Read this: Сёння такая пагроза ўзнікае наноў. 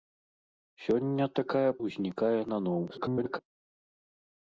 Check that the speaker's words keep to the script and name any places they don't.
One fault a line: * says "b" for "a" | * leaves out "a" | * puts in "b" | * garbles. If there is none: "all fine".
* leaves out "пагроза"
* garbles